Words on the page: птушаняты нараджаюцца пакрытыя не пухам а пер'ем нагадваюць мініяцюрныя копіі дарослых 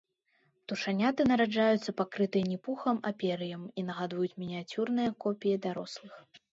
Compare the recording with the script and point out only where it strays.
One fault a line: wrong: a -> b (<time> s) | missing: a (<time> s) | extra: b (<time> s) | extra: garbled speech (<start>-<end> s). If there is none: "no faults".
extra: і (3.8 s)